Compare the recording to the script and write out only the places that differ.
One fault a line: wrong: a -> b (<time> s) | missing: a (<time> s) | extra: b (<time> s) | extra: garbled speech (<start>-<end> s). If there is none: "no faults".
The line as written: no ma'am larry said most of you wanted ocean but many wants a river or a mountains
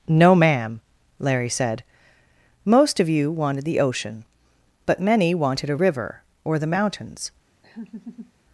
extra: the (3.6 s)
wrong: wants -> wanted (5.3 s)
wrong: a -> the (6.6 s)